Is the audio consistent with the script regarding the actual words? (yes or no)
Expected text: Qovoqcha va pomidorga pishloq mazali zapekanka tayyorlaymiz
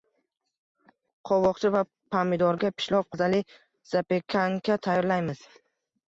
yes